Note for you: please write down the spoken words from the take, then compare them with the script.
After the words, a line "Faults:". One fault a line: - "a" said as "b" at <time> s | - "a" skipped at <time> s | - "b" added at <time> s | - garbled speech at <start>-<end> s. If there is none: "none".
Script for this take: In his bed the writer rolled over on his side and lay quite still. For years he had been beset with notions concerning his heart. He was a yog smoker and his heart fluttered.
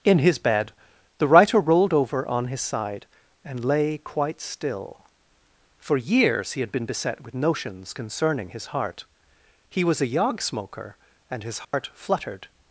In his bed the writer rolled over on his side and lay quite still. For years he had been beset with notions concerning his heart. He was a yog smoker and his heart fluttered.
Faults:
none